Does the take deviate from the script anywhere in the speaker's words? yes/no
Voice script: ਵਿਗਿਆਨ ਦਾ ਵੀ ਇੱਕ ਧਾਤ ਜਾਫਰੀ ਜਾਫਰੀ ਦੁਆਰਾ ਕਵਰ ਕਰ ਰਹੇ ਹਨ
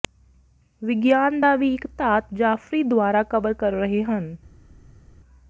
yes